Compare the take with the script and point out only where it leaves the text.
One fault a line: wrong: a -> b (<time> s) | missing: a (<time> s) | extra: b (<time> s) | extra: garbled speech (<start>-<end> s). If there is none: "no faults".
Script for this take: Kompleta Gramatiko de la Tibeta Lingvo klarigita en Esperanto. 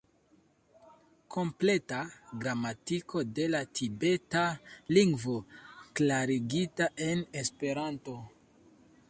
no faults